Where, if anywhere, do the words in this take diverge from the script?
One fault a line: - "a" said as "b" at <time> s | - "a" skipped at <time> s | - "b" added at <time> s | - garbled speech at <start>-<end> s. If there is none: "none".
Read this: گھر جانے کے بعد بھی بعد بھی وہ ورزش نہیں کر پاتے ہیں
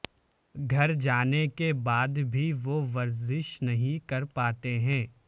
- "بعد بھی" skipped at 2.5 s